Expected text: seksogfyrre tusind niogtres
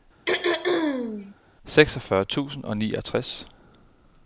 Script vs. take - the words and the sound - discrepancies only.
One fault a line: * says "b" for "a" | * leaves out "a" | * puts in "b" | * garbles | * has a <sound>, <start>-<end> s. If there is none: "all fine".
* has a throat clearing, 0.3-1.3 s
* puts in "og"